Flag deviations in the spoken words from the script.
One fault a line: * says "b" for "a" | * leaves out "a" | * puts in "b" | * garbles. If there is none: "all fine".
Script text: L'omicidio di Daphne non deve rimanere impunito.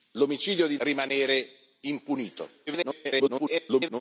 * leaves out "Daphne non deve"
* garbles